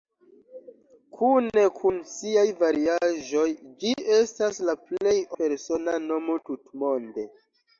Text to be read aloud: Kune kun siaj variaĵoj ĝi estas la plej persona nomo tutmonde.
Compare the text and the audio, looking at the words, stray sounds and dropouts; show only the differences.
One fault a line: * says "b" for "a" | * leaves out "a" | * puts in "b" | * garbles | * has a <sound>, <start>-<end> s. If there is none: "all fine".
all fine